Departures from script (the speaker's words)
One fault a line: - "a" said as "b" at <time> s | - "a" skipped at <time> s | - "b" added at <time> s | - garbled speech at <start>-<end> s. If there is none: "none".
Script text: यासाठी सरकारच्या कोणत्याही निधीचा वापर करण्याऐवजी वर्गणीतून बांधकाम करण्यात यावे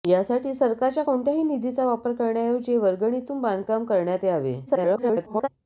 - garbled speech at 4.7-5.5 s